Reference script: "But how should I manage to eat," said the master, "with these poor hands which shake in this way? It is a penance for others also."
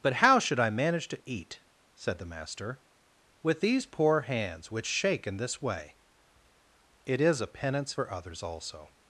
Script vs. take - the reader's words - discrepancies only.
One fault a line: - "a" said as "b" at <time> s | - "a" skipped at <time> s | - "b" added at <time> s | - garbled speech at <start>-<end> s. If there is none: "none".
none